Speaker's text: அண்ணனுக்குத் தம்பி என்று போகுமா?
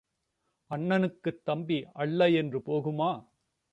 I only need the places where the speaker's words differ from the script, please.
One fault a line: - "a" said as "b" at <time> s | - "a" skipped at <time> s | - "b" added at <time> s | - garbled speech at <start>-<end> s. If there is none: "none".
- "அல்ல" added at 1.9 s